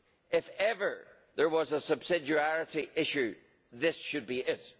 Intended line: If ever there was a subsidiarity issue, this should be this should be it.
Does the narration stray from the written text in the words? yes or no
yes